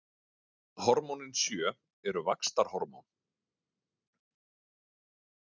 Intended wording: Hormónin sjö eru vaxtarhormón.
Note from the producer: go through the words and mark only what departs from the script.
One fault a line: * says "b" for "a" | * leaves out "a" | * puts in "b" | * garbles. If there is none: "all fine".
all fine